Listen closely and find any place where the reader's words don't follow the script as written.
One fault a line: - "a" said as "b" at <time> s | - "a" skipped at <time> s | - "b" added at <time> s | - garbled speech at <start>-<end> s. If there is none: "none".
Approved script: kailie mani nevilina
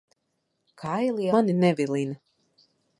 none